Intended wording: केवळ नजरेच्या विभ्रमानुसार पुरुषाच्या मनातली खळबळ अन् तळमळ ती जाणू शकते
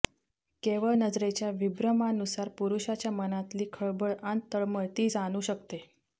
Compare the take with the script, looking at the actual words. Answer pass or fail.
pass